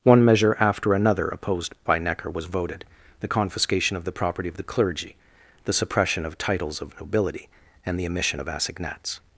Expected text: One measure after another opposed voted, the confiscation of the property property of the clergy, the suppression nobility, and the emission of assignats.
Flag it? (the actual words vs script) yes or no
yes